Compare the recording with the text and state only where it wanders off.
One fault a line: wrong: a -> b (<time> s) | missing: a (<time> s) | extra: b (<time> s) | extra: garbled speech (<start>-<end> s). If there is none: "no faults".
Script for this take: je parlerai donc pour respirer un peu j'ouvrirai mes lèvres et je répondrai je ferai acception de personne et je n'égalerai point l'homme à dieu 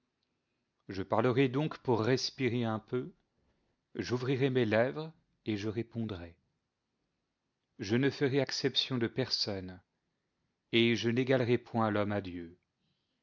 extra: ne (8.0 s)